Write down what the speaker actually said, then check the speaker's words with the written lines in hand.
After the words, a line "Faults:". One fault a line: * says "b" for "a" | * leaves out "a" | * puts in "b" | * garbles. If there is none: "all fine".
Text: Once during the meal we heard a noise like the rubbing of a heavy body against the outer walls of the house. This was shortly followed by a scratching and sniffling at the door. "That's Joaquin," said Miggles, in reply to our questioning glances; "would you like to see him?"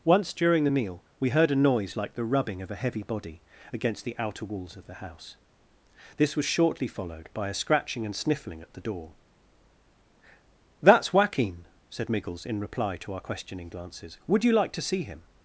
Once during the meal we heard a noise like the rubbing of a heavy body against the outer walls of the house. This was shortly followed by a scratching and sniffling at the door. "That's Joaquin," said Miggles, in reply to our questioning glances; "would you like to see him?"
Faults:
all fine